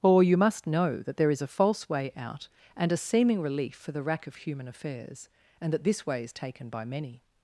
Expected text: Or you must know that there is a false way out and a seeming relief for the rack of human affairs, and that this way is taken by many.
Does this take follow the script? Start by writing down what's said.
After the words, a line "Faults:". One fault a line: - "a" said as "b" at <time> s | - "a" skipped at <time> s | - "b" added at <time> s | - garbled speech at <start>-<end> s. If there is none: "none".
Or you must know that there is a false way out and a seeming relief for the rack of human affairs, and that this way is taken by many.
Faults:
none